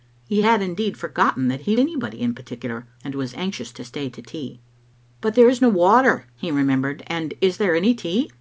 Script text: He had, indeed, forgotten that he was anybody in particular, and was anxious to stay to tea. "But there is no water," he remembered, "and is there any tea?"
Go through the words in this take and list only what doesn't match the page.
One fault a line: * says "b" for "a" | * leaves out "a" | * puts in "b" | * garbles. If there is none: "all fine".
* leaves out "was"